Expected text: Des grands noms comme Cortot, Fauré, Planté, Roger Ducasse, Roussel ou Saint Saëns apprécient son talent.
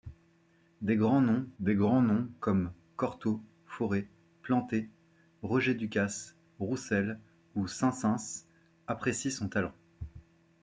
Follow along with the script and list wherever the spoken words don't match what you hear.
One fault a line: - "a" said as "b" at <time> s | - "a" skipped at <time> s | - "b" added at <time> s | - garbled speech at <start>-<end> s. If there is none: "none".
- "des grands noms" added at 1.6 s